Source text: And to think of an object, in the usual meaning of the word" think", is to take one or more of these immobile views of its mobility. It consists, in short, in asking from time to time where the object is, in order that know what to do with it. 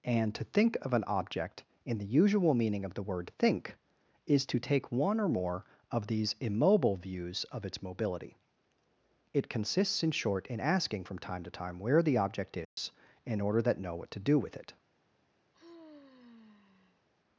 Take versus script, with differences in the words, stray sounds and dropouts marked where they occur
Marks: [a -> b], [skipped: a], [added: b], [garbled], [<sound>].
And to think of an object, in the usual meaning of the word" think", is to take one or more of these immobile views of its mobility. It consists, in short, in asking from time to time where the object is, [dropout] in order that know what to do with it. [sigh]